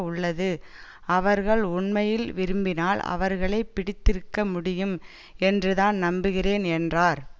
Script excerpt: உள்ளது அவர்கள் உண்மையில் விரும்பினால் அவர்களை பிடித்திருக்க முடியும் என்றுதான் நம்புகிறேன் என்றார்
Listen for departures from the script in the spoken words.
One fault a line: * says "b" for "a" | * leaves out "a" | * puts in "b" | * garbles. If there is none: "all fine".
all fine